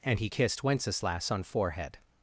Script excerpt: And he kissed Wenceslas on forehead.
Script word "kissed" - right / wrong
right